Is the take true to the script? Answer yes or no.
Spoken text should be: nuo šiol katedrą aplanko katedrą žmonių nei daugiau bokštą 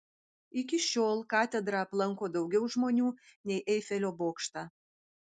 no